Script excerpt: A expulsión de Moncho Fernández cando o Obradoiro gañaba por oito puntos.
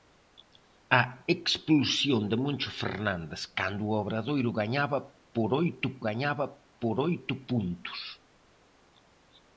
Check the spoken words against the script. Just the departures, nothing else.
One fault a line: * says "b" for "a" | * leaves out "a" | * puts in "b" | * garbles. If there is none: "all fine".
* puts in "gañaba por oito"